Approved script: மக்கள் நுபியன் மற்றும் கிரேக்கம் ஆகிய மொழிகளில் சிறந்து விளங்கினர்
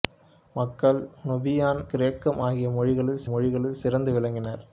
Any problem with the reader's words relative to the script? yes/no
yes